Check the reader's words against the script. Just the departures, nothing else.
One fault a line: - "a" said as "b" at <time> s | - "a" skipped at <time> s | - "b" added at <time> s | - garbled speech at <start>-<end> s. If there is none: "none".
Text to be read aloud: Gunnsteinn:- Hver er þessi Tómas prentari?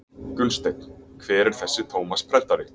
none